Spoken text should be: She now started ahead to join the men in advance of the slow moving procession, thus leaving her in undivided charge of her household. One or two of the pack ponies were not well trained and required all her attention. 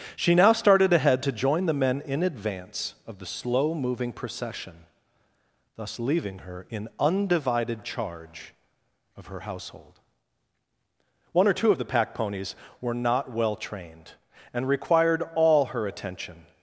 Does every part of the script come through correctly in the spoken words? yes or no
yes